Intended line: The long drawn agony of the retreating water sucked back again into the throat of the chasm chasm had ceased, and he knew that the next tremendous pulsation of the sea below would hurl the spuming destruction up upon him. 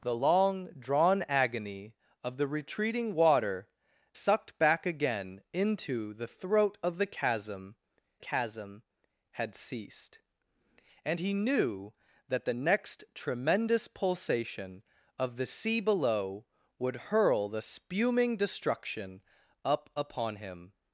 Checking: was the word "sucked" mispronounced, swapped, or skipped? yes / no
no